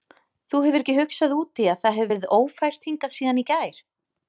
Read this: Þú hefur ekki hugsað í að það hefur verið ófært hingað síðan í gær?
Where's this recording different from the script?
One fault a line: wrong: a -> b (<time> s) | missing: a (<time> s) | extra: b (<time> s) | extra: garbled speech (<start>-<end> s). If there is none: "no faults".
extra: út (1.4 s)